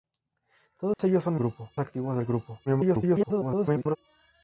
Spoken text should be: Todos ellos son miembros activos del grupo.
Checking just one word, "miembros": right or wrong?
wrong